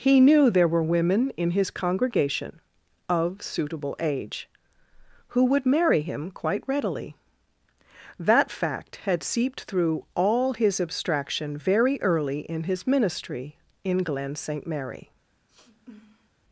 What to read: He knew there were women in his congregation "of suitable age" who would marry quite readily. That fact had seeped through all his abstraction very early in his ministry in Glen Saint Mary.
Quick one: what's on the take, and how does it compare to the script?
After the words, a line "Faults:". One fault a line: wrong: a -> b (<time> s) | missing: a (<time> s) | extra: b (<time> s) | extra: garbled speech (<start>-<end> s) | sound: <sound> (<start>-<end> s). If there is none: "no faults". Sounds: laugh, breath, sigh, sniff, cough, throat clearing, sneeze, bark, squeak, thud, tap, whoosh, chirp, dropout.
He knew there were women in his congregation "of suitable age" who would marry him quite readily. That fact had seeped through all his abstraction very early in his ministry in Glen Saint Mary.
Faults:
extra: him (6.0 s)
sound: sniff (15.5-16.3 s)